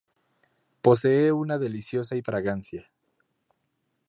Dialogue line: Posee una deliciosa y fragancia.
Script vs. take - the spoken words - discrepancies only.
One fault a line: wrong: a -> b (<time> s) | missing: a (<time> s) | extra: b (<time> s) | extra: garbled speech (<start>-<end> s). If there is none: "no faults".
no faults